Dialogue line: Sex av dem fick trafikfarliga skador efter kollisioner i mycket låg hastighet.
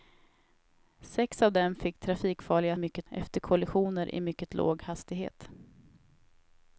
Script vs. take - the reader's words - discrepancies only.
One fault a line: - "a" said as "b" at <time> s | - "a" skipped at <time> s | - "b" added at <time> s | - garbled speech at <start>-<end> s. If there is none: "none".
- "skador" said as "mycket" at 2.8 s